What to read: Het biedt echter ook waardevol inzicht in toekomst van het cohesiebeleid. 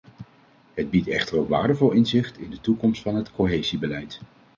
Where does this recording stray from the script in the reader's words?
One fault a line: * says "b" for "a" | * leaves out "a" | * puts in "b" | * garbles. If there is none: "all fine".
* puts in "de"